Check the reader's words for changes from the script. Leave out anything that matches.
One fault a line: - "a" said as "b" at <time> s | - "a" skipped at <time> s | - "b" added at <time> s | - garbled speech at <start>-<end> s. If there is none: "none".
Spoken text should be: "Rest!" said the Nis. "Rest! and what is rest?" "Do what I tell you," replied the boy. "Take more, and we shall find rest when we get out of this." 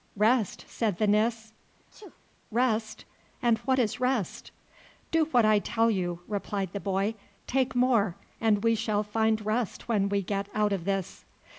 none